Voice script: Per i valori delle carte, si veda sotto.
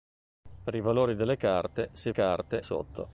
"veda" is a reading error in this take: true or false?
true